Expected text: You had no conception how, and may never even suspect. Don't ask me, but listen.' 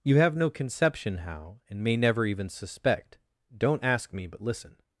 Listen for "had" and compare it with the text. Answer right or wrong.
wrong